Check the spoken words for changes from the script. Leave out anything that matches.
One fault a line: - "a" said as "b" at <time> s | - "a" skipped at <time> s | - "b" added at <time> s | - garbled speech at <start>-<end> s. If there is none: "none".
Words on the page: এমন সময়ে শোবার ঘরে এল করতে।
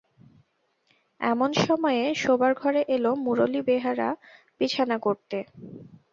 - "মুরলী বেহারা বিছানা" added at 3.2 s